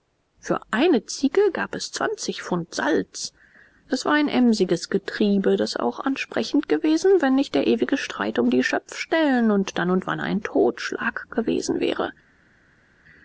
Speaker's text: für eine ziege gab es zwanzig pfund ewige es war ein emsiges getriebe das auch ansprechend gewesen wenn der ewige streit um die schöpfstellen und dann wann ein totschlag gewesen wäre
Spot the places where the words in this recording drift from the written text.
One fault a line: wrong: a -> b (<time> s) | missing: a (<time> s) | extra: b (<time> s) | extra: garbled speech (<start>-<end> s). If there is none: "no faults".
wrong: ewige -> salz (2.7 s)
extra: nicht (7.3 s)
extra: und (9.9 s)